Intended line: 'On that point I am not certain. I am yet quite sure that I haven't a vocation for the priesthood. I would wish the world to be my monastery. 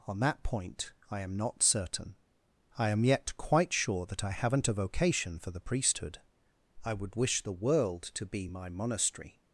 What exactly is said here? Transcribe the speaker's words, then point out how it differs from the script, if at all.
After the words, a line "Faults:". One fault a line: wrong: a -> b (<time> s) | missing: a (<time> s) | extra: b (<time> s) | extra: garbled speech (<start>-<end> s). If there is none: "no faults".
'On that point I am not certain. I am yet quite sure that I haven't a vocation for the priesthood. I would wish the world to be my monastery.
Faults:
no faults